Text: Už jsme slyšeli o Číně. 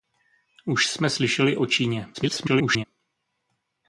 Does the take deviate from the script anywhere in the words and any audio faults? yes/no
yes